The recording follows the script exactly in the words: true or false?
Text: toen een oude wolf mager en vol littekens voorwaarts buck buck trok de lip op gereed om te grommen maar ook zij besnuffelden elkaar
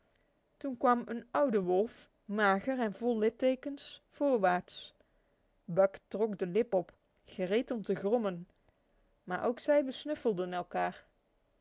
false